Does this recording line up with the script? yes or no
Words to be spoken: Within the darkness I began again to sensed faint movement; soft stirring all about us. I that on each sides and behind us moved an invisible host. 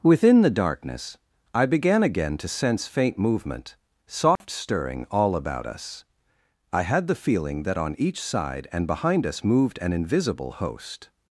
no